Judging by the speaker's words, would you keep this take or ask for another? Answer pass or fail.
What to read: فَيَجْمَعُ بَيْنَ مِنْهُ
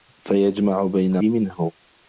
pass